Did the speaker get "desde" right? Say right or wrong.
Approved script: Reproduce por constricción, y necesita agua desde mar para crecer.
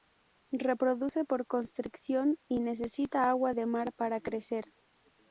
wrong